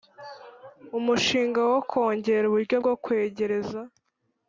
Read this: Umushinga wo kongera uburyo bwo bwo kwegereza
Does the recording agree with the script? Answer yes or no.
no